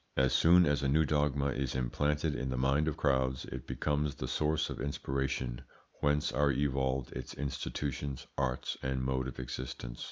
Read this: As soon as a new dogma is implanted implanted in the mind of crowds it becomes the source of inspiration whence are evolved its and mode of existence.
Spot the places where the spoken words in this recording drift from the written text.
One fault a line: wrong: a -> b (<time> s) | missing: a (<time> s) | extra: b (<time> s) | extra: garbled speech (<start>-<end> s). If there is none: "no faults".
missing: implanted (2.3 s)
extra: institutions arts (7.3 s)